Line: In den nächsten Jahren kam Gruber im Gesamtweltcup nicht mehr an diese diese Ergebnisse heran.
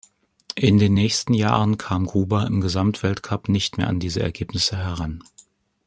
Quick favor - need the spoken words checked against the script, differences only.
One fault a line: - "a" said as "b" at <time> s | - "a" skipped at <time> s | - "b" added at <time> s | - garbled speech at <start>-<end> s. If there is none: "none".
- "diese" skipped at 4.2 s